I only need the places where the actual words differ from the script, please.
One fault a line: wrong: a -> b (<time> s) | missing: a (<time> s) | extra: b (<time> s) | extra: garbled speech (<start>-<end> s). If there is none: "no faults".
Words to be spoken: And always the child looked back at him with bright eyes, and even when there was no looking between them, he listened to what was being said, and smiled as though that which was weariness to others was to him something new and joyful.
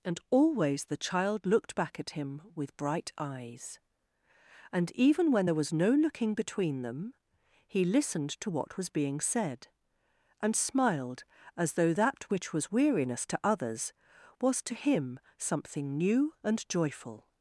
no faults